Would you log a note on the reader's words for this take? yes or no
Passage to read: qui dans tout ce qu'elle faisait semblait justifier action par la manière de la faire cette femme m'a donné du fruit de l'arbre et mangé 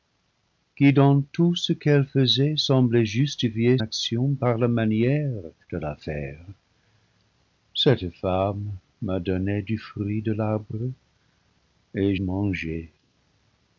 no